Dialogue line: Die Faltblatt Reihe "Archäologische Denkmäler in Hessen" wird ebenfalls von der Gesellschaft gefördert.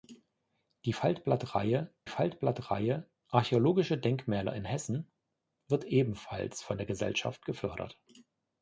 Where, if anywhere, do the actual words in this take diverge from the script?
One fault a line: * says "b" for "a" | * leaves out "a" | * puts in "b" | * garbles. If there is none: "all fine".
* puts in "Faltblatt Reihe"